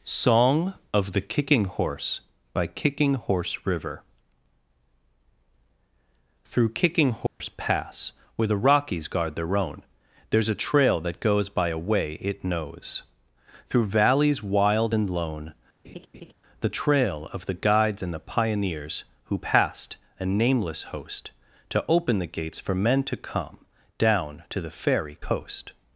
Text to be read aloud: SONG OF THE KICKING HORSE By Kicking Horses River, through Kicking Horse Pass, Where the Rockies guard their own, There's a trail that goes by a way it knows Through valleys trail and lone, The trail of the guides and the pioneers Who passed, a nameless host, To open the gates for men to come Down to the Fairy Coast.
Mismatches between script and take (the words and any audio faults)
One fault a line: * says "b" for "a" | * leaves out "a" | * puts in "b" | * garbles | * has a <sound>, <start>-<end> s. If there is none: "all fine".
* says "Horse" for "Horses"
* has a dropout, 7.3-7.4 s
* says "wild" for "trail"
* has a laugh, 15.8-16.3 s